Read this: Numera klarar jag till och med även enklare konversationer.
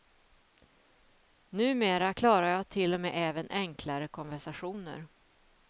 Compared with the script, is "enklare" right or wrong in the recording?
right